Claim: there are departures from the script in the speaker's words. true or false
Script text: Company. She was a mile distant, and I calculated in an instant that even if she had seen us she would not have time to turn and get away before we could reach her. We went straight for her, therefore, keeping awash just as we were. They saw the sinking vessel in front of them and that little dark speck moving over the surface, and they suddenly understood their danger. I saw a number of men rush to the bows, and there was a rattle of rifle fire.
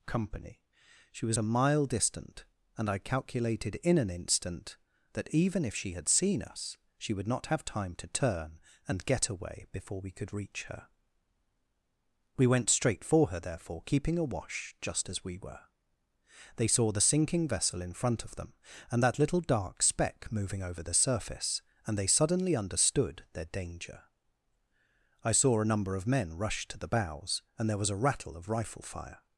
false